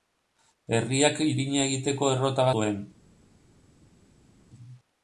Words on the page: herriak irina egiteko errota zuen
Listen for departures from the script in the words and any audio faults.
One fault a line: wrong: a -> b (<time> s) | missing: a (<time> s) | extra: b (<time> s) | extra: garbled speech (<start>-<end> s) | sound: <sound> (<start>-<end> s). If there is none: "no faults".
no faults